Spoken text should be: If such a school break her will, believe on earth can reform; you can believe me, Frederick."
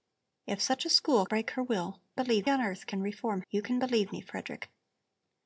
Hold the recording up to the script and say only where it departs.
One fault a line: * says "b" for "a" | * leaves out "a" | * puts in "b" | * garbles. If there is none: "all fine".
all fine